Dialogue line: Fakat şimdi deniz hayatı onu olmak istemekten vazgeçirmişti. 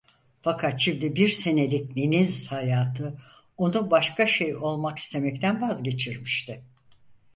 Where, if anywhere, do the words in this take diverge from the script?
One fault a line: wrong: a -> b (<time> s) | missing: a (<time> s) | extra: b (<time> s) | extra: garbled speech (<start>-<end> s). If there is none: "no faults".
extra: bir senelik (1.1 s)
extra: başka şey (3.9 s)